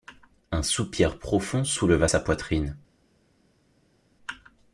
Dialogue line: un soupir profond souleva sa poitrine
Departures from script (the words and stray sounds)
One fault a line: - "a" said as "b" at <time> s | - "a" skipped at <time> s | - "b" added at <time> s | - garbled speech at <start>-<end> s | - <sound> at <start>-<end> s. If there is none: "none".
none